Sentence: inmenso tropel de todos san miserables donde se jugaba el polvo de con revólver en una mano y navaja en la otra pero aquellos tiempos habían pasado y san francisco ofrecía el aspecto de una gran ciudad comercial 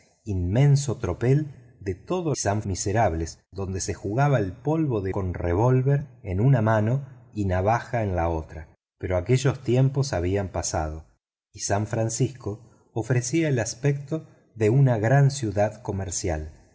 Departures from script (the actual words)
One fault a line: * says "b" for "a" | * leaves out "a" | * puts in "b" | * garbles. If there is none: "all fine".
all fine